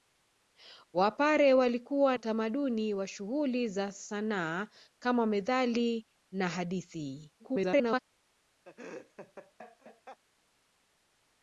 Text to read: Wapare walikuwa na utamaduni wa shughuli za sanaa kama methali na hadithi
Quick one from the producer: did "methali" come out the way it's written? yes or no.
yes